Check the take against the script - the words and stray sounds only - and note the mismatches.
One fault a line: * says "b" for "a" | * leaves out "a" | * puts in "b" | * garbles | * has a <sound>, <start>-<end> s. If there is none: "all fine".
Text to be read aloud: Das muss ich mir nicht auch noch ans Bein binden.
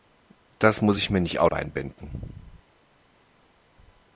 * leaves out "noch ans"